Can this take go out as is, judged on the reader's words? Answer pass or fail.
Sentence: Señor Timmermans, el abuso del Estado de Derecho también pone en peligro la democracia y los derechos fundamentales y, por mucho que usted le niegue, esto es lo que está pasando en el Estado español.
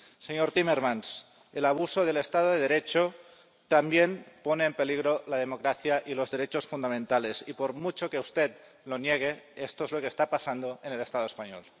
fail